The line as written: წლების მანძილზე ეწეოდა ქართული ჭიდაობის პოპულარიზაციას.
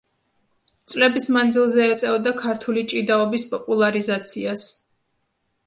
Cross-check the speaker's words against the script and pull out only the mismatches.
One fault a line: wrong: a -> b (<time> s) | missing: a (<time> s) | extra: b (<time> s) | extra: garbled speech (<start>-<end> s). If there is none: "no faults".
no faults